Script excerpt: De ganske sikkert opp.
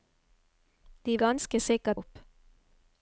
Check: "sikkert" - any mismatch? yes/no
no